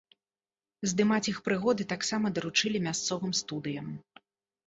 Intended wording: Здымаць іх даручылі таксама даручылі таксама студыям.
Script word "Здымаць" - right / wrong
right